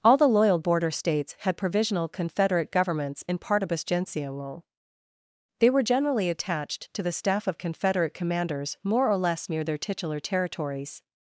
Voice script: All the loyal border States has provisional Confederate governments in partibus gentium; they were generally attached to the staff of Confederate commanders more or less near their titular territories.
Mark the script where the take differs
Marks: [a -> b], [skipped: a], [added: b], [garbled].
All the loyal border States [has -> had] provisional Confederate governments in partibus gentium; they were generally attached to the staff of Confederate commanders more or less near their titular territories.